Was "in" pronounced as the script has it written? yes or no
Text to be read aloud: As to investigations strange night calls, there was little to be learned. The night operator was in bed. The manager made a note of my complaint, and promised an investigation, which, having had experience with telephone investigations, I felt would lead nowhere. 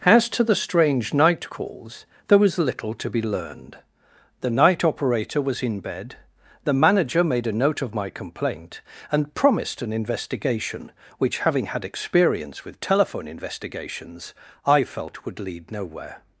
yes